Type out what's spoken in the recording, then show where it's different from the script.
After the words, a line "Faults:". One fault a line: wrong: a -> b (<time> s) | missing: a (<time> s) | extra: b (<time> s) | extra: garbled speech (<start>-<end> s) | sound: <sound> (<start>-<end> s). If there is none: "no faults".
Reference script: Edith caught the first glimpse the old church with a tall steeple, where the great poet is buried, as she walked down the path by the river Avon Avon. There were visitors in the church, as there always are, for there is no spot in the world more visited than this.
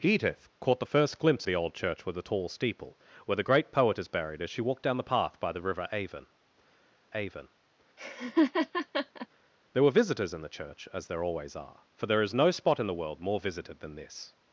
Edith caught the first glimpse the old church with a tall steeple, where the great poet is buried, as she walked down the path by the river Avon Avon. There were visitors in the church, as there always are, for there is no spot in the world more visited than this.
Faults:
sound: laugh (8.0-9.3 s)